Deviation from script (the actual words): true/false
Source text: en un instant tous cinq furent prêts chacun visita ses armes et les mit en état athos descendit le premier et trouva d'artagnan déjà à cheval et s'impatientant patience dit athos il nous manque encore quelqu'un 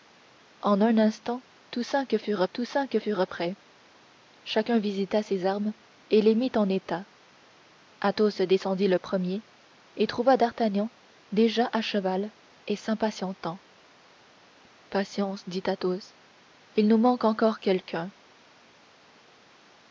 true